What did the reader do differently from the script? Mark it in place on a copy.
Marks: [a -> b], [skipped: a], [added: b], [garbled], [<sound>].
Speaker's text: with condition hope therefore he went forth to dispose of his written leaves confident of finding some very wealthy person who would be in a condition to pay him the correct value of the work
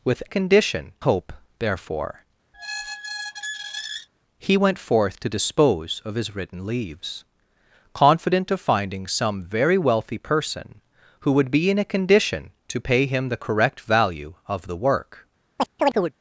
with condition hope therefore [squeak] he went forth to dispose of his written leaves confident of finding some very wealthy person who would be in a condition to pay him the correct value of the work [chirp]